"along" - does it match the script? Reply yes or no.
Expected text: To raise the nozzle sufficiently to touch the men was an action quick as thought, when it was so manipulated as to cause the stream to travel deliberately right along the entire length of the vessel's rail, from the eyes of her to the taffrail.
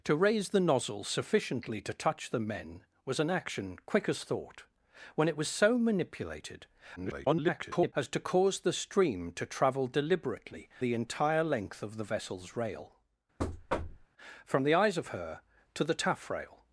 no